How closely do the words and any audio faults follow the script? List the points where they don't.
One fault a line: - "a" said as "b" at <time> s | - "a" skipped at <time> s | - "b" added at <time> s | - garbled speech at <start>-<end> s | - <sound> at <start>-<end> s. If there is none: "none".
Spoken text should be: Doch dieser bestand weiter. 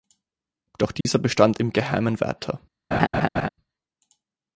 - dropout at 1.0-1.1 s
- "im Geheimen" added at 1.6 s
- laugh at 2.9-3.5 s